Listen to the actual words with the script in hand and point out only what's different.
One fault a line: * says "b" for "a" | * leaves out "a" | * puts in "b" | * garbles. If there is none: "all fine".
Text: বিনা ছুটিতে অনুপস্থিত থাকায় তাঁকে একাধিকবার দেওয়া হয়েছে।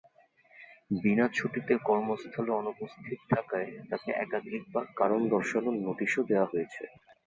* puts in "কর্মস্থলে"
* puts in "কারণ দর্শানোর নোটিশও"